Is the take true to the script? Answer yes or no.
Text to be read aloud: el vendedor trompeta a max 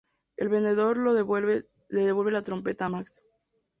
no